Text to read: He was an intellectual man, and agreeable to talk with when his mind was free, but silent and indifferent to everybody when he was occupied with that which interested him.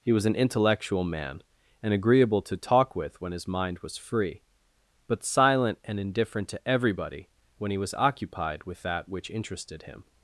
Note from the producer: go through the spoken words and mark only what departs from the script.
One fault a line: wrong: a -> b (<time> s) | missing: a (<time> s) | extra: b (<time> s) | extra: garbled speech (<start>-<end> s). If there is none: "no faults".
no faults